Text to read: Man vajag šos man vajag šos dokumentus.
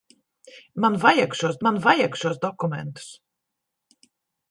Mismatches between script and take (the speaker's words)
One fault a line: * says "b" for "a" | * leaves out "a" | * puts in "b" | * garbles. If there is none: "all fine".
all fine